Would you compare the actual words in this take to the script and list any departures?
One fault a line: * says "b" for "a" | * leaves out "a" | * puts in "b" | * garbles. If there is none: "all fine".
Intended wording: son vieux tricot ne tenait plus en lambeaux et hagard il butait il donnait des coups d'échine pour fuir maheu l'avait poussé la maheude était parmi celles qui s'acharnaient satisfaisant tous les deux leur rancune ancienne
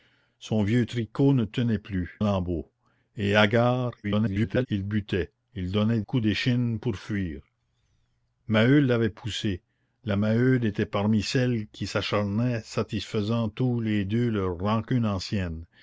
* leaves out "en"
* garbles
* leaves out "des"